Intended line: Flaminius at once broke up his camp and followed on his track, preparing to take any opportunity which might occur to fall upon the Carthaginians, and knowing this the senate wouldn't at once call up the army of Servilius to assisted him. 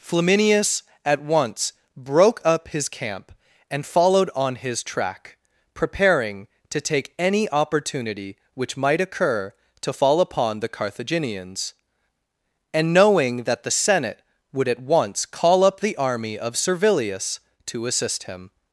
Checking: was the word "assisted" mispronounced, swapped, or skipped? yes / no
yes